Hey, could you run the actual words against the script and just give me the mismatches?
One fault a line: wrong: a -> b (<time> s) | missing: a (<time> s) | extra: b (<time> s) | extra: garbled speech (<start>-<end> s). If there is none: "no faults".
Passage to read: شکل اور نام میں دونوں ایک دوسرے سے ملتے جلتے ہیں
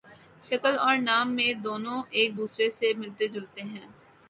no faults